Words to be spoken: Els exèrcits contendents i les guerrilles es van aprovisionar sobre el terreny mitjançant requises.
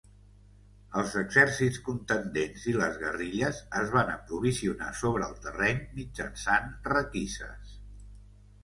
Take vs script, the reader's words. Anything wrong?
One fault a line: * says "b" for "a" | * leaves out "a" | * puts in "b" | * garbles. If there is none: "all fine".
all fine